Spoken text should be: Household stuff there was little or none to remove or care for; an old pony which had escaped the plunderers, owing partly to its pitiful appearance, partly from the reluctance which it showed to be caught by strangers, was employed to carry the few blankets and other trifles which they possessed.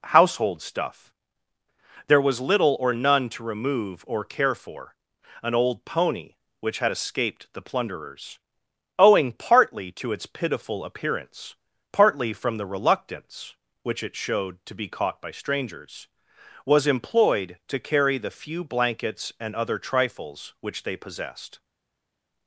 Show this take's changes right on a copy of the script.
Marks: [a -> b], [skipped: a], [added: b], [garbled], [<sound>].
Household stuff there was little or none to remove or care for; an old pony which had escaped the plunderers, owing partly to its pitiful appearance, partly from the reluctance which it showed to be caught by strangers, was employed to carry the few blankets and other trifles which they possessed.